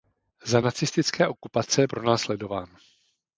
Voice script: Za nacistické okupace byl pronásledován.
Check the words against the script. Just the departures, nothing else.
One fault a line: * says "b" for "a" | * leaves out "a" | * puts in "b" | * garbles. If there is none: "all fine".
* leaves out "byl"